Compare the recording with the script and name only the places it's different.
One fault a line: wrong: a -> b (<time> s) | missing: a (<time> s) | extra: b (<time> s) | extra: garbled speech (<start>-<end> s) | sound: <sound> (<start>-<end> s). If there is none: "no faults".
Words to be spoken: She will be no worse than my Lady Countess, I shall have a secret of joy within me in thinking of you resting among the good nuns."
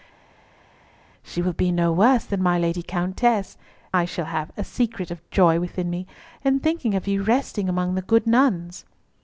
no faults